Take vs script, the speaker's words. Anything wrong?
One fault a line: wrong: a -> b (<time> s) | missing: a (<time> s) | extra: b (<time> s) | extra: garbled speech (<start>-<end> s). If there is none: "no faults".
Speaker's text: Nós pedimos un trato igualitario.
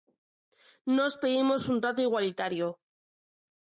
no faults